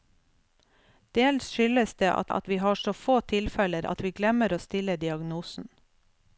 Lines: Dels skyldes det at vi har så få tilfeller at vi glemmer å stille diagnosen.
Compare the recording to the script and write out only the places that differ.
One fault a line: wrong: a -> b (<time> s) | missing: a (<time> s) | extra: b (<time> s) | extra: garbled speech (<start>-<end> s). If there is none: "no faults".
extra: at (2.3 s)